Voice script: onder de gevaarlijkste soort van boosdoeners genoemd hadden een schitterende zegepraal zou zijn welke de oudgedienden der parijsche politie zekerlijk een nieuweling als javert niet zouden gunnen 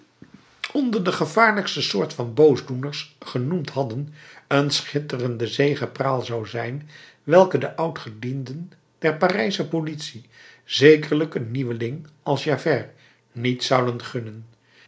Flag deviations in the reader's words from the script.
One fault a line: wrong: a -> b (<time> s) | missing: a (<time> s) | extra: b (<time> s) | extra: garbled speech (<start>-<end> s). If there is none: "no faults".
no faults